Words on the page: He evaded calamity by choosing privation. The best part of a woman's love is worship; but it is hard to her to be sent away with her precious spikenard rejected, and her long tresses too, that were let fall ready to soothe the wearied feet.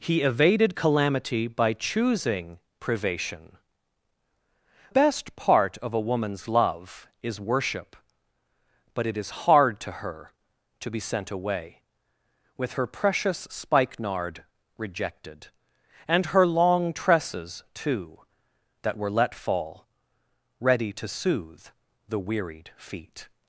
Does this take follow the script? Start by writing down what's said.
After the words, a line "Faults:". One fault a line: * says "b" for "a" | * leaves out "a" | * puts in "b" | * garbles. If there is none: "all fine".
He evaded calamity by choosing privation. Best part of a woman's love is worship; but it is hard to her to be sent away with her precious spikenard rejected, and her long tresses too, that were let fall ready to soothe the wearied feet.
Faults:
* leaves out "The"